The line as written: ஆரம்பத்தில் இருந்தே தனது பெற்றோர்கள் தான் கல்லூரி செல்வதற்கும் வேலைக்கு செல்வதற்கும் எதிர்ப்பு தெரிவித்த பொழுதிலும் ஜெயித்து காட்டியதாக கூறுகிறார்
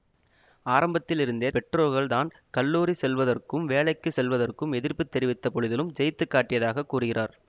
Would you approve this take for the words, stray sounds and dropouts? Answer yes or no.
no